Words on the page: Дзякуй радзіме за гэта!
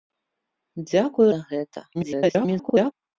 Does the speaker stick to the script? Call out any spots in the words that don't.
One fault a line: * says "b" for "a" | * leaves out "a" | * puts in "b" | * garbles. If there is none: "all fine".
* leaves out "радзіме"
* garbles